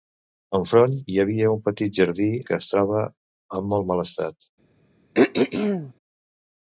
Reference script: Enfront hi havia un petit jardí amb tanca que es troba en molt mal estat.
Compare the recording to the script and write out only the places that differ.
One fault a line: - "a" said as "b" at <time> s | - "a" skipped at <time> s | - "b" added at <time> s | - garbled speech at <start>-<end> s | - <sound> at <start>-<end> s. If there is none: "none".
- "amb tanca" skipped at 2.3 s
- throat clearing at 5.1-5.9 s